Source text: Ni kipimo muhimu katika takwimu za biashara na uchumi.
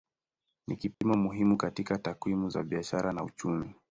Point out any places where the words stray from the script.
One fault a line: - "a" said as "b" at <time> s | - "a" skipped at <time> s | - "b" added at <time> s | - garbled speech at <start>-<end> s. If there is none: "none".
none